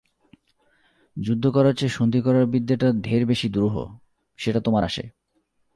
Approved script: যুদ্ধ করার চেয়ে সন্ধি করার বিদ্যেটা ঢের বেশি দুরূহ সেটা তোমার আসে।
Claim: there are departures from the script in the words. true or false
false